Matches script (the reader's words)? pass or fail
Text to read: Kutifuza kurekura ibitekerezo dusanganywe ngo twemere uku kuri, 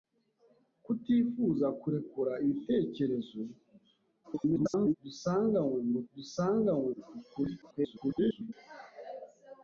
fail